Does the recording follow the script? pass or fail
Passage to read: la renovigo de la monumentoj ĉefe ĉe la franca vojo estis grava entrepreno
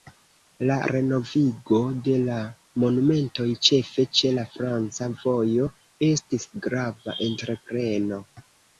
pass